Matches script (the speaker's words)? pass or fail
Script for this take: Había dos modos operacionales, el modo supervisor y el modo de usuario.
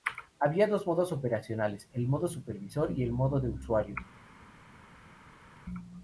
pass